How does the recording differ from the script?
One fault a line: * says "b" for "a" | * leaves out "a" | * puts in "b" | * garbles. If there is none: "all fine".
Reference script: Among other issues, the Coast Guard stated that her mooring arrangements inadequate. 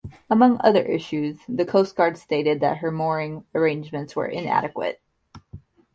* puts in "were"